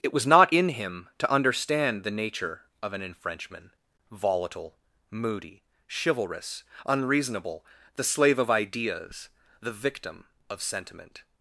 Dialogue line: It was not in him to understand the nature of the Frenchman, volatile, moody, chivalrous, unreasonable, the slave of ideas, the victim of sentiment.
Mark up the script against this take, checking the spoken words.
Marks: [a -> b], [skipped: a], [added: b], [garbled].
It was not in him to understand the nature of [the -> an] Frenchman, volatile, moody, chivalrous, unreasonable, the slave of ideas, the victim of sentiment.